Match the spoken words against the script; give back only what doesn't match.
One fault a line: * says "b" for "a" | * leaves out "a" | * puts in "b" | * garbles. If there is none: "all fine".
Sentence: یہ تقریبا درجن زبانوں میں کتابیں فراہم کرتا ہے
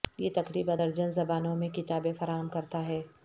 all fine